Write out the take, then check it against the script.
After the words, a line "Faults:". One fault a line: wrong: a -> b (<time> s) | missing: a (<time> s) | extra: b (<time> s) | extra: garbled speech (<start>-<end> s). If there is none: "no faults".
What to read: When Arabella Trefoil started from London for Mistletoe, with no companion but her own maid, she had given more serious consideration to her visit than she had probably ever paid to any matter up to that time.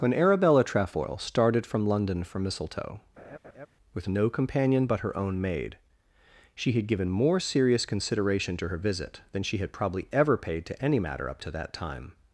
When Arabella Trefoil started from London for Mistletoe, with no companion but her own maid, she had given more serious consideration to her visit than she had probably ever paid to any matter up to that time.
Faults:
no faults